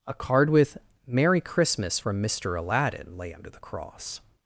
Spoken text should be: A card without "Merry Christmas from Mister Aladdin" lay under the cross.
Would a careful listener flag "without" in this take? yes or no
yes